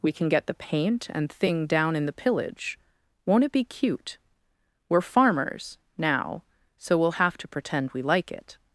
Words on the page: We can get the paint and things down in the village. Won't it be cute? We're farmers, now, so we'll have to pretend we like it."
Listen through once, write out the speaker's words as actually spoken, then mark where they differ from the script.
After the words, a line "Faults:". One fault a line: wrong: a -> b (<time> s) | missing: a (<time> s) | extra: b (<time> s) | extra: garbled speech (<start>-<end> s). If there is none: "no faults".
We can get the paint and thing down in the pillage. Won't it be cute? We're farmers, now, so we'll have to pretend we like it."
Faults:
wrong: things -> thing (1.3 s)
wrong: village -> pillage (2.1 s)